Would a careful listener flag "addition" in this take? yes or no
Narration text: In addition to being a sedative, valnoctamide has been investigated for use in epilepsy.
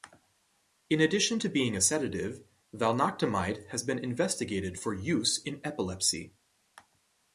no